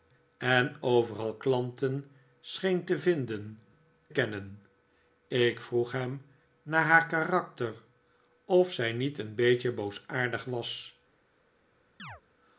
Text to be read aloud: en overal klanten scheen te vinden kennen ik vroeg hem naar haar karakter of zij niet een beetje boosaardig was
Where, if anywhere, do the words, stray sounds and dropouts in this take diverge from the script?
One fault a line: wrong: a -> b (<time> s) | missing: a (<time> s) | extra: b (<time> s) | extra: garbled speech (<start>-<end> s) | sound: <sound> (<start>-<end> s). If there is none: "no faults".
sound: chirp (12.0-12.2 s)